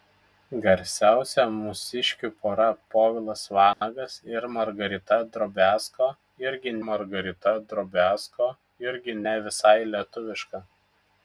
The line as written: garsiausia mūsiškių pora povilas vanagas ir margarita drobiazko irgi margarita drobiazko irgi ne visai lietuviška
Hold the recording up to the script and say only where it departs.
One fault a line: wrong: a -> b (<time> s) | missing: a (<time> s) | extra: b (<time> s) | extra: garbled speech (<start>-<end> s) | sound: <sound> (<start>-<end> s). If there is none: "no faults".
sound: dropout (3.7-3.8 s)